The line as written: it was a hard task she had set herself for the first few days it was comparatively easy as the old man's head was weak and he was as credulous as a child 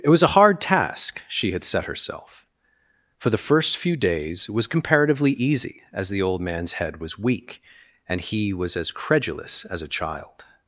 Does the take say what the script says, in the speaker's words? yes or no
no